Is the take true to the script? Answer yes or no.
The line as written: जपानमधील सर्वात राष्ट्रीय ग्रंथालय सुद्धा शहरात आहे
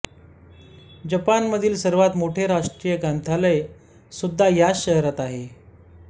no